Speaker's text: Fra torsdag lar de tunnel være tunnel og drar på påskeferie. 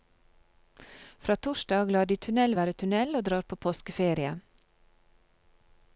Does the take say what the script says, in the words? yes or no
yes